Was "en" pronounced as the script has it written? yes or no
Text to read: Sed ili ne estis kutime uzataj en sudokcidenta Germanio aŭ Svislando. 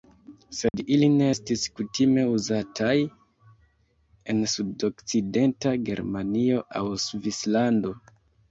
yes